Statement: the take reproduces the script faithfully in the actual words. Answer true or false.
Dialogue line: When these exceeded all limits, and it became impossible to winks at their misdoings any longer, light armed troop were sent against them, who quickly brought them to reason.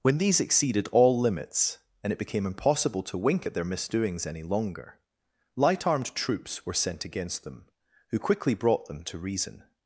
false